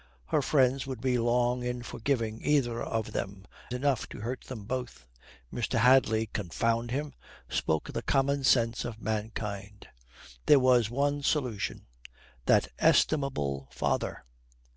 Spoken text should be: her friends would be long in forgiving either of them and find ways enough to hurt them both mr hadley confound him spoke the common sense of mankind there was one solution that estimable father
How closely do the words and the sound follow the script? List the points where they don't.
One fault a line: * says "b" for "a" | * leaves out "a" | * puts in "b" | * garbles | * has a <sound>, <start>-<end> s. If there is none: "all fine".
* leaves out "and find ways"